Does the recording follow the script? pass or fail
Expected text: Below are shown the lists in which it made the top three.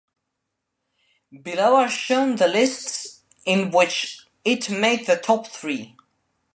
pass